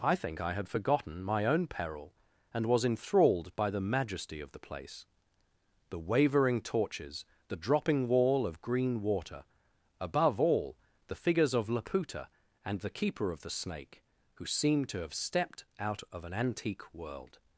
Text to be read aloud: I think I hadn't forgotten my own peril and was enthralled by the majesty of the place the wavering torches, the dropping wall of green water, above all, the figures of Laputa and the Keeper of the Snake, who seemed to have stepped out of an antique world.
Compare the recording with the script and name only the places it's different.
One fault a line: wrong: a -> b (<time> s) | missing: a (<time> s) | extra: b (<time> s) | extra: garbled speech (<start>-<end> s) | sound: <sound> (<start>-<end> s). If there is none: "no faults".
wrong: hadn't -> had (0.5 s)